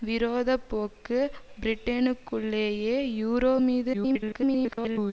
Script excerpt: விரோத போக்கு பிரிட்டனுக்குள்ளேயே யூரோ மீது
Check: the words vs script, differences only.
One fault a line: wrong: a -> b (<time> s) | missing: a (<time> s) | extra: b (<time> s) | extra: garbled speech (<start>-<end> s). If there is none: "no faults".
extra: garbled speech (3.9-5.1 s)